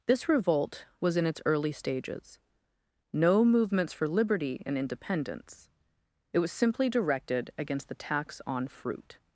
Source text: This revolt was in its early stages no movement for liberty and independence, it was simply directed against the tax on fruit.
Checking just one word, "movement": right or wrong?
wrong